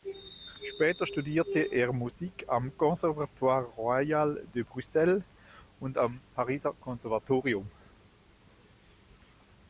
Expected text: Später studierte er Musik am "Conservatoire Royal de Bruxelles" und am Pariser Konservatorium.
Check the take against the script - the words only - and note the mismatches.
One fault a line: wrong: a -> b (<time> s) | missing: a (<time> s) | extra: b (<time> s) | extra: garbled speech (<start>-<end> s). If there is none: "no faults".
no faults